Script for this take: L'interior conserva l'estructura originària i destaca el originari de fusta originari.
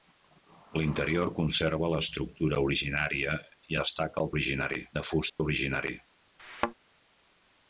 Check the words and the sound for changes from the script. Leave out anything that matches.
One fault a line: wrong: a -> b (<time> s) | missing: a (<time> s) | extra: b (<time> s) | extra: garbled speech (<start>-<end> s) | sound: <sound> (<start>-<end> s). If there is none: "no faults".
sound: dropout (5.3-5.4 s)
sound: thud (6.4-6.7 s)